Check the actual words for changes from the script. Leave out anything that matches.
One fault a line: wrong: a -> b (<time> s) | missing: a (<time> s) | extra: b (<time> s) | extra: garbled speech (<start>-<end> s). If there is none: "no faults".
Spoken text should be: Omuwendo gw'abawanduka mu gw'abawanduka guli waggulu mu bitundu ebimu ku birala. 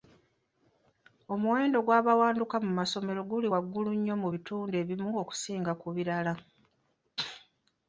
wrong: gw'abawanduka -> masomero (2.8 s)
extra: nnyo (4.0 s)
extra: okusinga (5.2 s)